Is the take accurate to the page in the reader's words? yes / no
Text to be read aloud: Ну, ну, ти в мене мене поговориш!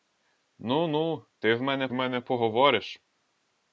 yes